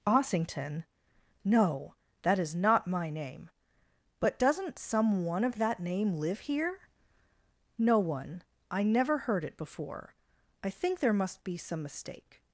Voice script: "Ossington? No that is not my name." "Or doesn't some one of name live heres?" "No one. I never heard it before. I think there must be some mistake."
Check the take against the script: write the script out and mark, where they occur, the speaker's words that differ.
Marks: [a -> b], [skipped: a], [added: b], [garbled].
"Ossington? No that is not my name." ["Or -> But] doesn't some one of [added: that] name live [heres?" -> here] "No one. I never heard it before. I think there must be some mistake."